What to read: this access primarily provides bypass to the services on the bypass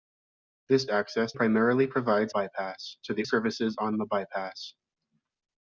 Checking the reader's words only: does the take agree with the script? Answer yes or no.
yes